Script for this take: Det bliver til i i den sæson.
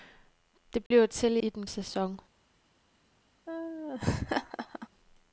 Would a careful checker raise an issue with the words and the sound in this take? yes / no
yes